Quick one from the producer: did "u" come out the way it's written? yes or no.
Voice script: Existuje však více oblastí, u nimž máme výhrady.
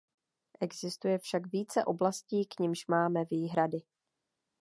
no